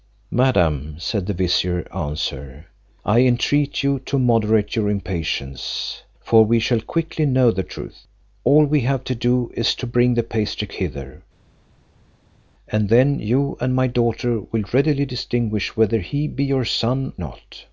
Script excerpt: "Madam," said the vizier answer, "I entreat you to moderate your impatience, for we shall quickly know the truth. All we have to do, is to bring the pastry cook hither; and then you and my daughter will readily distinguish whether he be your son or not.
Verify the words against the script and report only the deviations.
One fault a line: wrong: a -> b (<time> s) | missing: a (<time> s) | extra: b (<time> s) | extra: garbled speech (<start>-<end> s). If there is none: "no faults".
missing: cook (10.7 s)
missing: or (17.1 s)